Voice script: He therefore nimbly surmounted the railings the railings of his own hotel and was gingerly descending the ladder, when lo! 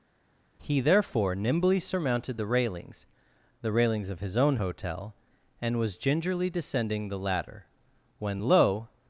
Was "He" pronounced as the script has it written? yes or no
yes